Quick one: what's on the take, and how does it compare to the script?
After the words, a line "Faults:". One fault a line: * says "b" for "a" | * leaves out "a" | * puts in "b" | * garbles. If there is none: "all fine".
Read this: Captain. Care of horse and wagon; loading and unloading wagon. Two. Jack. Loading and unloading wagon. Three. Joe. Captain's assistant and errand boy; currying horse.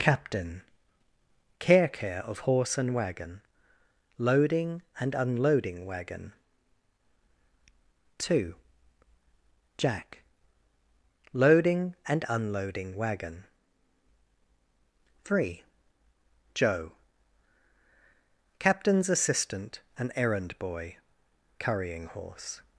Captain. Care Care of horse and wagon; loading and unloading wagon. Two. Jack. Loading and unloading wagon. Three. Joe. Captain's assistant and errand boy; currying horse.
Faults:
* puts in "Care"